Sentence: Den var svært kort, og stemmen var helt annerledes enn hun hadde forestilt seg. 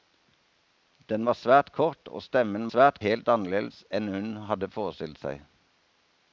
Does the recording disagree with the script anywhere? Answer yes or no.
yes